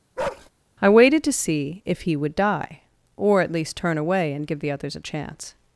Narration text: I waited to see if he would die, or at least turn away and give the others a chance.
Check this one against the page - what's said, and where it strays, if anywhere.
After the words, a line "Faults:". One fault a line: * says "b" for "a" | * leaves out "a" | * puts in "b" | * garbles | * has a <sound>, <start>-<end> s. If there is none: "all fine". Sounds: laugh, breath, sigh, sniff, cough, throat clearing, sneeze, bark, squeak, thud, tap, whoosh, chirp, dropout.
I waited to see if he would die, or at least turn away and give the others a chance.
Faults:
* has a bark, 0.2-0.5 s